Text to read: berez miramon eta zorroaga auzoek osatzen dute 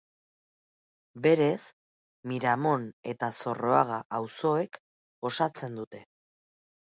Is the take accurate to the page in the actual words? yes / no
yes